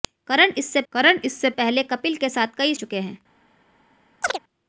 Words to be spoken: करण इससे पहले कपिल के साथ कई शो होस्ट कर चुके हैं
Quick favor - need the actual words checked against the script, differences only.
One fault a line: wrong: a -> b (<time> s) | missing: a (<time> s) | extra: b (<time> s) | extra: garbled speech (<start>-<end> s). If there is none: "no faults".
extra: करण इससे (0.9 s)
missing: शो होस्ट कर (2.7 s)